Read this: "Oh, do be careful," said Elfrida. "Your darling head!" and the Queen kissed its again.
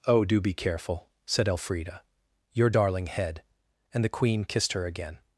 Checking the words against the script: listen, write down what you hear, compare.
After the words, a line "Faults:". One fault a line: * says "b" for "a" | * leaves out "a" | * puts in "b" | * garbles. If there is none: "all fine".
"Oh, do be careful," said Elfrida. "Your darling head!" and the Queen kissed her again.
Faults:
* says "her" for "its"